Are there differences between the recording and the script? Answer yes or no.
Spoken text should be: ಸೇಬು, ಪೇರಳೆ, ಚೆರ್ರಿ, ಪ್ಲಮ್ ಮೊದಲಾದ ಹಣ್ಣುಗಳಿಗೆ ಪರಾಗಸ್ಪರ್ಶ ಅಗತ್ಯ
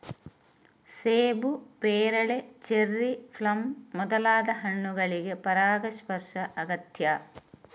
no